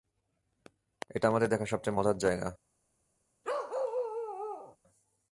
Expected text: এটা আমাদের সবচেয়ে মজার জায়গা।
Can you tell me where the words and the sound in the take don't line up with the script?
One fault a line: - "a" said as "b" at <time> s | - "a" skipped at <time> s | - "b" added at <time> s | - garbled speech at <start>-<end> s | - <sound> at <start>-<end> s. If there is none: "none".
- "দেখা" added at 1.5 s
- bark at 3.4-4.8 s